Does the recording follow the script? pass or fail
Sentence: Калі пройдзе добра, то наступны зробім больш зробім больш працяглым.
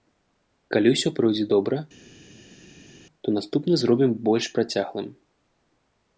fail